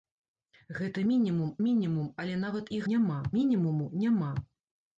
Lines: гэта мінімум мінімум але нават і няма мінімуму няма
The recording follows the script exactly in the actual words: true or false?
true